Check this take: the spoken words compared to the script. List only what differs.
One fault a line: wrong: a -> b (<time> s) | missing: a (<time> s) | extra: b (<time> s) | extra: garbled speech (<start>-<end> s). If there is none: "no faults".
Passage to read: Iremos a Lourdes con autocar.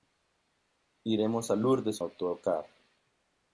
missing: con (2.0 s)